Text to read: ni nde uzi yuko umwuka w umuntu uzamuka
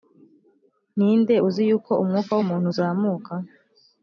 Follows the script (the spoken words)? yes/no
yes